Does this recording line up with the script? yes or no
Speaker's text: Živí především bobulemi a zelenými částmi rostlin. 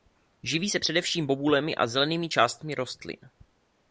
no